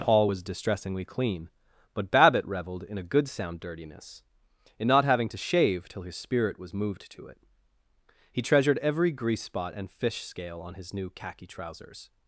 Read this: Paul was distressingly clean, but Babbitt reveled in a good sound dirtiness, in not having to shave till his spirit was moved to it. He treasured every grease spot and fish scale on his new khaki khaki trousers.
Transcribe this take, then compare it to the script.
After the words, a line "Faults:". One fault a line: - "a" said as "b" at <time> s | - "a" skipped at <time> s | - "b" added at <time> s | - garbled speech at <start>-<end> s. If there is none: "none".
Paul was distressingly clean, but Babbitt reveled in a good sound dirtiness, in not having to shave till his spirit was moved to it. He treasured every grease spot and fish scale on his new khaki trousers.
Faults:
- "khaki" skipped at 11.5 s